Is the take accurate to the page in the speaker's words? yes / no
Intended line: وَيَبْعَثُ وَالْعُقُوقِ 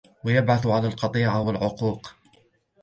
no